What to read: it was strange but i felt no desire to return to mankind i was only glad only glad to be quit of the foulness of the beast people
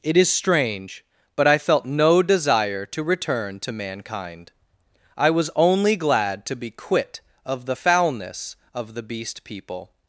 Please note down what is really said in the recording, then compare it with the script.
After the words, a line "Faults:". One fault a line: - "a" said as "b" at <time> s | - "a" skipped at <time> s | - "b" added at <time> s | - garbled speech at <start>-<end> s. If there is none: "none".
it is strange but i felt no desire to return to mankind i was only glad to be quit of the foulness of the beast people
Faults:
- "was" said as "is" at 0.2 s
- "only glad" skipped at 6.5 s